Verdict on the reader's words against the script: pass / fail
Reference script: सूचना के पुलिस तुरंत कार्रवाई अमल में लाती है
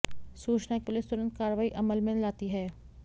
pass